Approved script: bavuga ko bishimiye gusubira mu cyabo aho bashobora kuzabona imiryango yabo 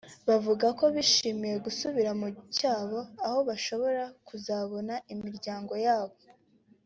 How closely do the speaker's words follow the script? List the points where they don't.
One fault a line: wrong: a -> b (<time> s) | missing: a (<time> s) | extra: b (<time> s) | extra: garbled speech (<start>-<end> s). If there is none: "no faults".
no faults